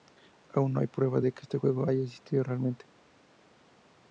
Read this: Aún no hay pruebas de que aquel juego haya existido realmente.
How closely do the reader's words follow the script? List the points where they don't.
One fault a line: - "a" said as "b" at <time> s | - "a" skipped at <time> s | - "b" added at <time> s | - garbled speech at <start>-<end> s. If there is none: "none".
- "aquel" said as "este" at 1.4 s